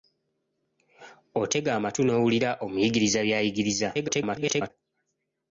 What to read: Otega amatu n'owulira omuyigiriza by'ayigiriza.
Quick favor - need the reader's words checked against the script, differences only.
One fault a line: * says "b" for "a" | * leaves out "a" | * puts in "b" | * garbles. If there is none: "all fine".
* garbles